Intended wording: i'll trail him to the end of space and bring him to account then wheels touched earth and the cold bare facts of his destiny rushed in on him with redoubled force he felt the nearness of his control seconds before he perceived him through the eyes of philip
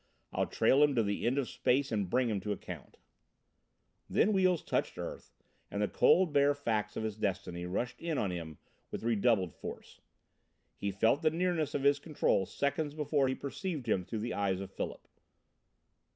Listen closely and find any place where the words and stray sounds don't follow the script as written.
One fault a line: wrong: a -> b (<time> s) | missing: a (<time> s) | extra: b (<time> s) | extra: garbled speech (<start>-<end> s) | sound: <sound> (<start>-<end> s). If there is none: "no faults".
no faults